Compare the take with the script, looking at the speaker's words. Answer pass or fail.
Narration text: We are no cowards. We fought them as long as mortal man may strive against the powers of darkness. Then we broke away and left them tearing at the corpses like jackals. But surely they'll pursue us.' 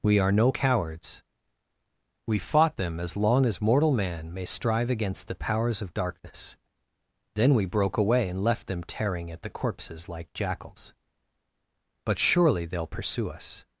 pass